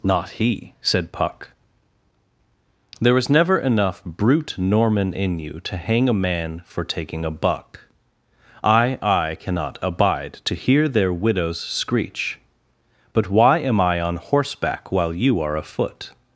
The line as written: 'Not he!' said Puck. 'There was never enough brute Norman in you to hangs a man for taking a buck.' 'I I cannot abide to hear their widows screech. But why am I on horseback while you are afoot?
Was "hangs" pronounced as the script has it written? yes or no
no